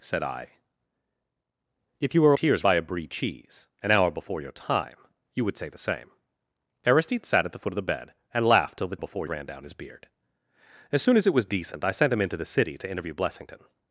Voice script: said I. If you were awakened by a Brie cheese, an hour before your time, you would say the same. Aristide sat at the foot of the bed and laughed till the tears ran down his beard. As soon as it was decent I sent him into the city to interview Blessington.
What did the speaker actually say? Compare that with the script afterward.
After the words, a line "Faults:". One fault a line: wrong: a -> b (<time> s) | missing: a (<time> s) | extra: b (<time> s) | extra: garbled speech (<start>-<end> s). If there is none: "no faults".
said I. If you were tears by a Brie cheese, an hour before your time, you would say the same. Aristide sat at the foot of the bed and laughed till the before ran down his beard. As soon as it was decent I sent him into the city to interview Blessington.
Faults:
wrong: awakened -> tears (2.3 s)
wrong: tears -> before (9.0 s)